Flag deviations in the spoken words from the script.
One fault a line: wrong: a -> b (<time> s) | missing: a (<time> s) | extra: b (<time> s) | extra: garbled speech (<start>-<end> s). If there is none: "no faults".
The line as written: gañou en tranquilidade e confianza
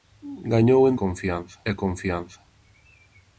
wrong: tranquilidade -> confianza (1.0 s)